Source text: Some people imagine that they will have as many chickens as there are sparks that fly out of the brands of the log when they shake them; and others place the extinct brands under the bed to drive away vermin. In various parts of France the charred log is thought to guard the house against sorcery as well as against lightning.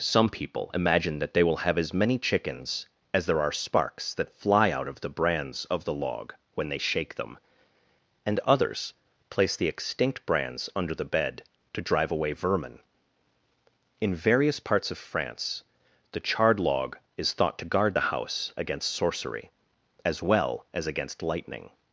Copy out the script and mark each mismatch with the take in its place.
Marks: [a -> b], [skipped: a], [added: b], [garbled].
Some people imagine that they will have as many chickens as there are sparks that fly out of the brands of the log when they shake them; and others place the extinct brands under the bed to drive away vermin. In various parts of France the charred log is thought to guard the house against sorcery as well as against lightning.